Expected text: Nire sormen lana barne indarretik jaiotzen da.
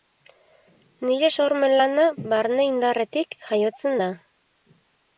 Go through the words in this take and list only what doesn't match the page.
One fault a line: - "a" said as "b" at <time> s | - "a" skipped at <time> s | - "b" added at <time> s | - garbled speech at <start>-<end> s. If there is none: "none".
none